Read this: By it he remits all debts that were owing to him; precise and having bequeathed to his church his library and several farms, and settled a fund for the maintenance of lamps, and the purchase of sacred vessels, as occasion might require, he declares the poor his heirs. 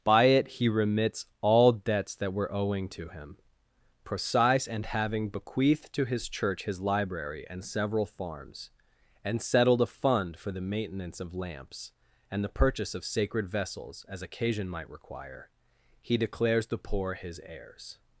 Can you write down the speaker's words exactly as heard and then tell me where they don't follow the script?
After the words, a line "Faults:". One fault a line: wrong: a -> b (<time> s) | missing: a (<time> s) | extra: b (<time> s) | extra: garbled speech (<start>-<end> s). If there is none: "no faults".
By it he remits all debts that were owing to him; precise and having bequeathed to his church his library and several farms, and settled a fund for the maintenance of lamps, and the purchase of sacred vessels, as occasion might require, he declares the poor his heirs.
Faults:
no faults